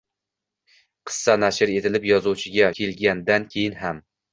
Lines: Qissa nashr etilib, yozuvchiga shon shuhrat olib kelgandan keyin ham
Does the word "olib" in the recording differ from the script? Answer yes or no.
yes